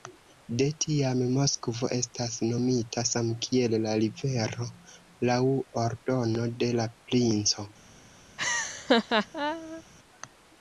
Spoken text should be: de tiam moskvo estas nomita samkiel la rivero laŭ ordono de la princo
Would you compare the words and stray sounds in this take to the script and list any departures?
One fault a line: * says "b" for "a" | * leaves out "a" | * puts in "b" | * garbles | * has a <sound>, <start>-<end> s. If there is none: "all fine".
* has a laugh, 8.4-9.8 s